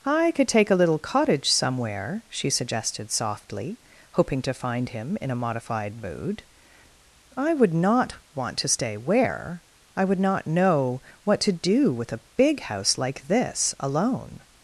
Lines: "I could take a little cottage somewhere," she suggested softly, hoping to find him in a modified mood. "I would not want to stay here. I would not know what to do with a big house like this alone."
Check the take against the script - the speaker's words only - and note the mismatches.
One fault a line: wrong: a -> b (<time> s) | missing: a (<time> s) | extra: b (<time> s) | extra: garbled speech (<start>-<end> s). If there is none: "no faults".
wrong: here -> where (9.0 s)